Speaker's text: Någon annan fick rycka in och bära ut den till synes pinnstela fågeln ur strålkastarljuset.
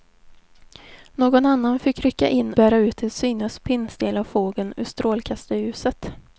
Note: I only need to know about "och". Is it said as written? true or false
false